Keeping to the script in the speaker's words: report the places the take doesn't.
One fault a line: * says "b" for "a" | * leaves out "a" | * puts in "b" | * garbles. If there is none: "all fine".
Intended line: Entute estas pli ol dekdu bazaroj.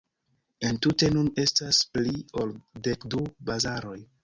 * puts in "nun"